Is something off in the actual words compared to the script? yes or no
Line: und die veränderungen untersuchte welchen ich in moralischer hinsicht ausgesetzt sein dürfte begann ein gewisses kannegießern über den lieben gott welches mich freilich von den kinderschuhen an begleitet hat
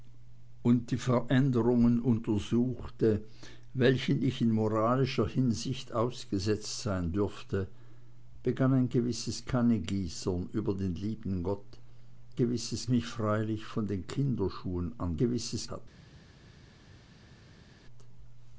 yes